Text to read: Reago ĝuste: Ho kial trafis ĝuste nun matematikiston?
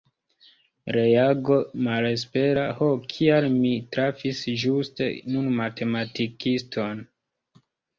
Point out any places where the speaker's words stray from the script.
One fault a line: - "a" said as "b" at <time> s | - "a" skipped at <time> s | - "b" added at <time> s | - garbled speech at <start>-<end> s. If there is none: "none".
- "ĝuste" said as "malespera" at 1.9 s
- "mi" added at 3.6 s